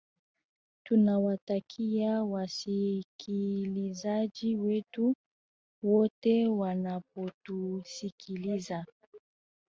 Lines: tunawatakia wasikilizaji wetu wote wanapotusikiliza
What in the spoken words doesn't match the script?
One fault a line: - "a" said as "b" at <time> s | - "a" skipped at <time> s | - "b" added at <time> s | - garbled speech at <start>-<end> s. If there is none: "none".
none